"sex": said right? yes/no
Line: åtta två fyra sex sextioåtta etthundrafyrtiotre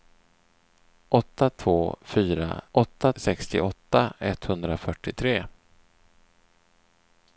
no